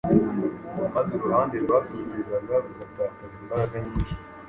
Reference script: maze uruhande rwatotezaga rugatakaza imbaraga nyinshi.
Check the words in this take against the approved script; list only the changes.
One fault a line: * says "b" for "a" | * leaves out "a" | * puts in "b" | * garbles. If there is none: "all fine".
all fine